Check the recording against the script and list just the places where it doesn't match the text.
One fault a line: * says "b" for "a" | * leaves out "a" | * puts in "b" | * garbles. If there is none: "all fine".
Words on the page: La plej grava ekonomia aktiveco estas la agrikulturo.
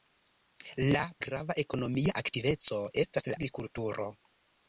* leaves out "plej"
* leaves out "la"